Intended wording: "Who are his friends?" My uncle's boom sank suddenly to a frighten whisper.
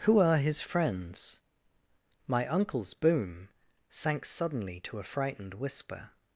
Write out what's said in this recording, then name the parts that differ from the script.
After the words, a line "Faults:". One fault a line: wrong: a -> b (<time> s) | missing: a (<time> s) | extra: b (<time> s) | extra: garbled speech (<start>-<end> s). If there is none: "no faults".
"Who are his friends?" My uncle's boom sank suddenly to a frightened whisper.
Faults:
wrong: frighten -> frightened (5.0 s)